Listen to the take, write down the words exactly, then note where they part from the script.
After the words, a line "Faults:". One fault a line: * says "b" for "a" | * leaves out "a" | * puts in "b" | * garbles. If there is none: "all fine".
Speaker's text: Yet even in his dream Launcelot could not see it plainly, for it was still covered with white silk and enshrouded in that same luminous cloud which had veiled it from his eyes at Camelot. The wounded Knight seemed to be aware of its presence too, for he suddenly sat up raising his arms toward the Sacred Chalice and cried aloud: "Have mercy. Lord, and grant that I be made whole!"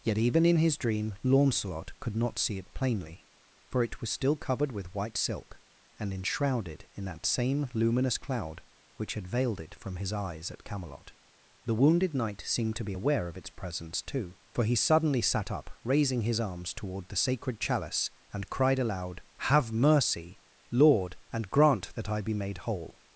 Yet even in his dream Launcelot could not see it plainly, for it was still covered with white silk and enshrouded in that same luminous cloud which had veiled it from his eyes at Camelot. The wounded Knight seemed to be aware of its presence too, for he suddenly sat up raising his arms toward the Sacred Chalice and cried aloud: "Have mercy. Lord, and grant that I be made whole!"
Faults:
all fine